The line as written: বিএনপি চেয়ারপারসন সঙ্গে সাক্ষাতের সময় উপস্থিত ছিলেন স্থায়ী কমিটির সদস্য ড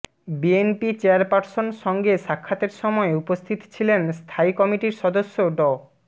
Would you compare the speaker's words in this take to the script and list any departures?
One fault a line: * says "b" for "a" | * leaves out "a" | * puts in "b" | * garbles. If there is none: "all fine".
all fine